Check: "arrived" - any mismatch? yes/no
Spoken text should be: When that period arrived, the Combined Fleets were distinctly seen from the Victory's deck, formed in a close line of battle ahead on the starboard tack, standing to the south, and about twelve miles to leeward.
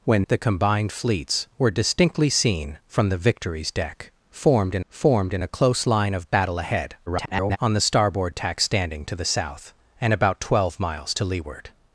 yes